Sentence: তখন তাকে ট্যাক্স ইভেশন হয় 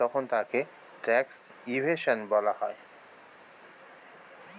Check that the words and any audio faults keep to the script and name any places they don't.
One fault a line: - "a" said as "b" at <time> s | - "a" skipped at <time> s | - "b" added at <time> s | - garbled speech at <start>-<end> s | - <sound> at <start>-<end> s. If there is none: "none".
- "বলা" added at 2.3 s